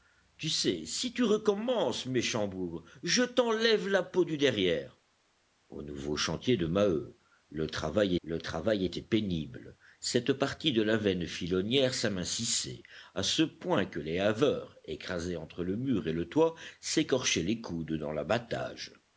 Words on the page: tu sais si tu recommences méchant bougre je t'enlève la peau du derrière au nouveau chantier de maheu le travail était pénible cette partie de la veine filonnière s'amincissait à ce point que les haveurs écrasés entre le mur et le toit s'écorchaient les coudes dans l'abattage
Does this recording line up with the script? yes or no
no